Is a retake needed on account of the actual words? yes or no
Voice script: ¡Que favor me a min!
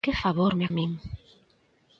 no